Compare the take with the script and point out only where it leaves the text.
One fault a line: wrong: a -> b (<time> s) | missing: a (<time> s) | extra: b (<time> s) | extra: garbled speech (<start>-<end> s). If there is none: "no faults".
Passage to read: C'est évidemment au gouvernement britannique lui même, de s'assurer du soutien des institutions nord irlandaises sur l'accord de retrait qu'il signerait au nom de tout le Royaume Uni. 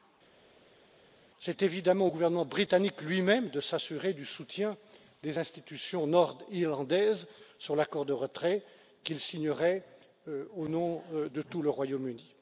no faults